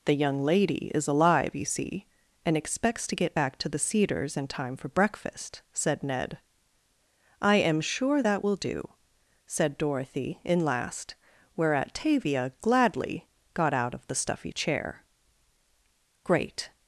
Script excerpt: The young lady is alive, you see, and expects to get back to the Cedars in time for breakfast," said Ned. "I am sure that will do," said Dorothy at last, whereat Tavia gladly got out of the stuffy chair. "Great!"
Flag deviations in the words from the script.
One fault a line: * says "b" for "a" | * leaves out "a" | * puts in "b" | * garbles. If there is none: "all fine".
* says "in" for "at"